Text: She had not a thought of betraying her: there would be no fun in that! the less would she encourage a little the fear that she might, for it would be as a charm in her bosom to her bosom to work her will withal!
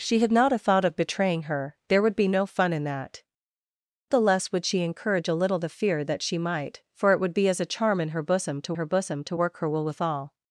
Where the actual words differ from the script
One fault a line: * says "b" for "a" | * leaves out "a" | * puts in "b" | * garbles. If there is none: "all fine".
all fine